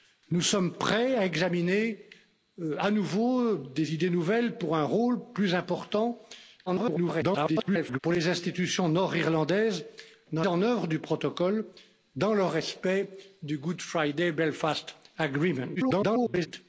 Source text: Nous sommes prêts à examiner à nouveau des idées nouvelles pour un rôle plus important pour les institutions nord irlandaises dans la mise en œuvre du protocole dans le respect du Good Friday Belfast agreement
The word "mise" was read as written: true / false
false